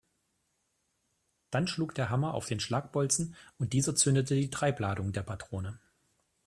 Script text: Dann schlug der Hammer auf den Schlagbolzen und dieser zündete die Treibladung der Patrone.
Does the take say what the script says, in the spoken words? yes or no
yes